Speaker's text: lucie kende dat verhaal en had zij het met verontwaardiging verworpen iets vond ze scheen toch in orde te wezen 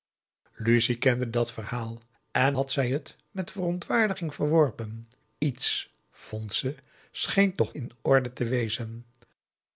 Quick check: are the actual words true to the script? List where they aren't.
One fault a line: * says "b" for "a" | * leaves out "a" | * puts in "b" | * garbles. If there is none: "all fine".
all fine